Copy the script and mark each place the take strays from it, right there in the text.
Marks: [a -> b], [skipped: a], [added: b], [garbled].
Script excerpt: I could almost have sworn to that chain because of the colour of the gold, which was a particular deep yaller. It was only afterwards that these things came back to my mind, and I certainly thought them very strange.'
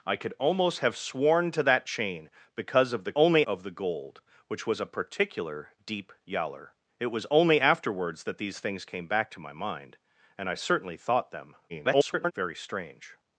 I could almost have sworn to that chain because of the [colour -> only] of the gold, which was a particular deep yaller. It was only afterwards that these things came back to my mind, and I certainly thought them [garbled] very strange.'